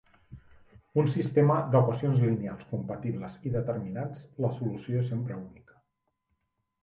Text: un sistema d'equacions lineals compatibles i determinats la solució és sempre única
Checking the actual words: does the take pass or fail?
pass